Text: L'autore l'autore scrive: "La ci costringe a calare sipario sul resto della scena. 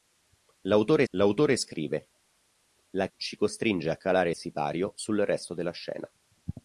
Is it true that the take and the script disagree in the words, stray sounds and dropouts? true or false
false